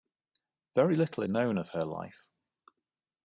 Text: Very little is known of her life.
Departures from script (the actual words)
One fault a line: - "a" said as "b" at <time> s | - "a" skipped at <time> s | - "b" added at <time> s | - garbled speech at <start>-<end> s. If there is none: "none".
- "is" skipped at 1.2 s